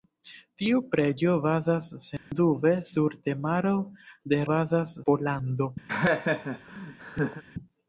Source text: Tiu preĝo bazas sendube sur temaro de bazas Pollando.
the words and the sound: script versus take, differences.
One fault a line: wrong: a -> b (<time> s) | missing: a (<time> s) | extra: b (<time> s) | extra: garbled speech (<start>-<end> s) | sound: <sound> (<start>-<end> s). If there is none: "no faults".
sound: dropout (2.2-2.3 s)
sound: laugh (5.9-7.4 s)